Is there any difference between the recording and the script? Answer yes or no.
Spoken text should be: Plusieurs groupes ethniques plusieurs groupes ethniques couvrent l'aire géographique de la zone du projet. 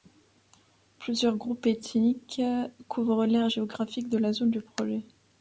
yes